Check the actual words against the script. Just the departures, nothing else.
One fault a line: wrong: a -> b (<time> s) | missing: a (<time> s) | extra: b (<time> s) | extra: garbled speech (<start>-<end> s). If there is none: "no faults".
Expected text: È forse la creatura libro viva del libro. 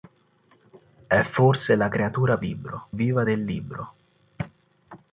no faults